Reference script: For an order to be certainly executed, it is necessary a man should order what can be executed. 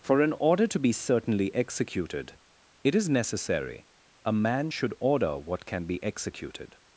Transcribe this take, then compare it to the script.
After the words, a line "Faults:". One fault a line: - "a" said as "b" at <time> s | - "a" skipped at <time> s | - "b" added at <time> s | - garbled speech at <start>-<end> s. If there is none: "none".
For an order to be certainly executed, it is necessary a man should order what can be executed.
Faults:
none